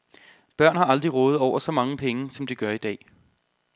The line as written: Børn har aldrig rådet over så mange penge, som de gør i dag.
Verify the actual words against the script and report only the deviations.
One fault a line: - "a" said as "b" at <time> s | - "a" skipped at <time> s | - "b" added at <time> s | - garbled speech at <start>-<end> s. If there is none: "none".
none